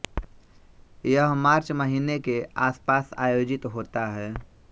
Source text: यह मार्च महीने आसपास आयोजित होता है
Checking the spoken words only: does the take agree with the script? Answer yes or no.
no